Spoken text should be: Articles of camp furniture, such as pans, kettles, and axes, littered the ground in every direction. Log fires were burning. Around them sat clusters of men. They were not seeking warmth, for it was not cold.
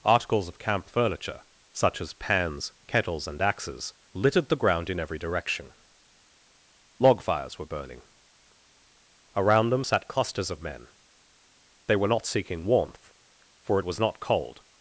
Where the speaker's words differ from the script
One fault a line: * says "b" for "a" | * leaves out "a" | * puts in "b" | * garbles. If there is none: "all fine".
all fine